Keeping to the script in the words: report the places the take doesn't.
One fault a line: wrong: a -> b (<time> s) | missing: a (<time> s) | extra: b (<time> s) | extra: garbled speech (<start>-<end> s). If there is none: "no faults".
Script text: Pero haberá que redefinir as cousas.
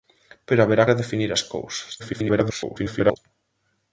missing: que (0.8 s)
extra: garbled speech (2.0-3.2 s)